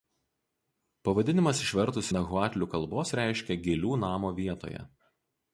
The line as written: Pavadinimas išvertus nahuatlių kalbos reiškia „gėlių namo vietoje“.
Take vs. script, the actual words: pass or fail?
pass